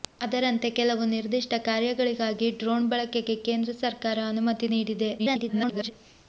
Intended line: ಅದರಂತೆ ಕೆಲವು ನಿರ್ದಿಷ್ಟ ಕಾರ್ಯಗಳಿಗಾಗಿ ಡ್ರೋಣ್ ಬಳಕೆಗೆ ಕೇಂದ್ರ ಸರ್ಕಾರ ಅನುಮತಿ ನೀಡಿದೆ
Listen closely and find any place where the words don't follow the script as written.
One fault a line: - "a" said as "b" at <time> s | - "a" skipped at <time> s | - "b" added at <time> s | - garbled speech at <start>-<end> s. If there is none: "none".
- garbled speech at 5.2-5.9 s